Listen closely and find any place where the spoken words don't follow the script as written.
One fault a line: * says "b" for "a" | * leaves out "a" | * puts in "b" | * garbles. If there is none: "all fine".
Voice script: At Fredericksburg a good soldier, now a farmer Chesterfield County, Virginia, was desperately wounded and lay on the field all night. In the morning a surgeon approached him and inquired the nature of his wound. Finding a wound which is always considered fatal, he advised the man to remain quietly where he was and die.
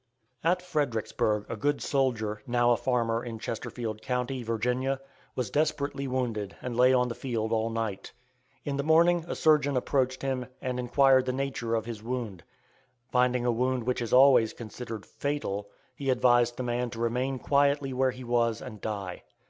* puts in "in"